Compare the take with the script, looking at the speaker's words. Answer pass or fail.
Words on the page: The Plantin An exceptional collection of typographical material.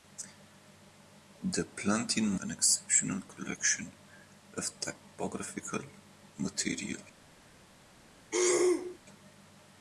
pass